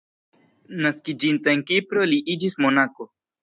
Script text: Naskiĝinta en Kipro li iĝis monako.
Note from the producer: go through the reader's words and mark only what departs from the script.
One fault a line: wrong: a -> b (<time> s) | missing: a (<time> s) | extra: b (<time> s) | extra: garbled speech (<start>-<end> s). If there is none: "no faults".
no faults